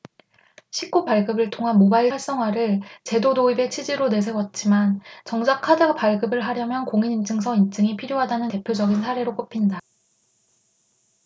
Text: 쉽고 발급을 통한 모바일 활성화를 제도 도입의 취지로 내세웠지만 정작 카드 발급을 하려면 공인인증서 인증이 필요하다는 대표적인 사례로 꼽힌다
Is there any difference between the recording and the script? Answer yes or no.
no